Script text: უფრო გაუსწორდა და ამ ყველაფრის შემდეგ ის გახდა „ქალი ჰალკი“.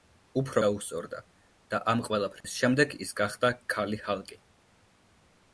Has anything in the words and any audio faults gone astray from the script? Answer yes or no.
yes